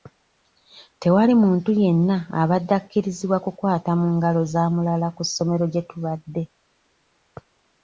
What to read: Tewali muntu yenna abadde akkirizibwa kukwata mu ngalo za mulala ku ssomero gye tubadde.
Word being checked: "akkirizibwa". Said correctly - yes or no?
yes